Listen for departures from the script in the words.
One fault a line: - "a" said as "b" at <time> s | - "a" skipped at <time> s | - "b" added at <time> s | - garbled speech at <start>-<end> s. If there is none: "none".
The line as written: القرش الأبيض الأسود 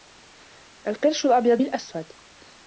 none